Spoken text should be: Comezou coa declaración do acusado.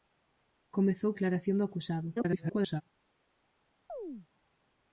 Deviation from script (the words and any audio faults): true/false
true